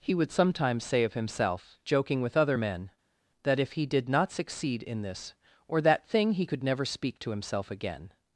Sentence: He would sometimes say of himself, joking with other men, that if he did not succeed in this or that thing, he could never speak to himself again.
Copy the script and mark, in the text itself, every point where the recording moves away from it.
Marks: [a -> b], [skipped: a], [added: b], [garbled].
He would sometimes say of himself, joking with other men, that if he did not succeed in this or that thing, he could never speak to himself again.